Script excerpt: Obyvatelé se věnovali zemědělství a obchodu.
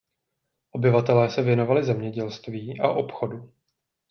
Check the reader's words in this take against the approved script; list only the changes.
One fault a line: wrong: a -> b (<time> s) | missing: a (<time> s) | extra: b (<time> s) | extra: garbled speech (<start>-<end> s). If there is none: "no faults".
no faults